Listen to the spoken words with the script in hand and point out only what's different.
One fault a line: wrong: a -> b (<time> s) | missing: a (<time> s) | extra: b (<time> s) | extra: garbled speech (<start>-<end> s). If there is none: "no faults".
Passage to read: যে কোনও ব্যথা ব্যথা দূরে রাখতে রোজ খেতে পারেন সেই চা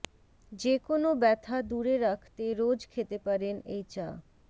missing: ব্যথা (1.6 s)
wrong: সেই -> এই (3.7 s)